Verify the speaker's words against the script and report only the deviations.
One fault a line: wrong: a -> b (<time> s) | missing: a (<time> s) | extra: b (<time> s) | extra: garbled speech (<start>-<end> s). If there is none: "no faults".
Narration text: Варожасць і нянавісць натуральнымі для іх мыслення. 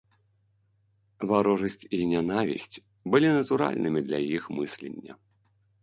extra: былі (3.1 s)